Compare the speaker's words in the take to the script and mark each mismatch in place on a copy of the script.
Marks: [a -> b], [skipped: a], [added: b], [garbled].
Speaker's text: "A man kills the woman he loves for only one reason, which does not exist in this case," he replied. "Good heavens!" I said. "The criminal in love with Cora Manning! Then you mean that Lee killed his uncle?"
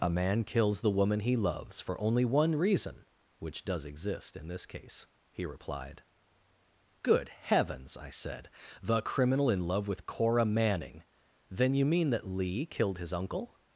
"A man kills the woman he loves for only one reason, which does [skipped: not] exist in this case," he replied. "Good heavens!" I said. "The criminal in love with Cora Manning! Then you mean that Lee killed his uncle?"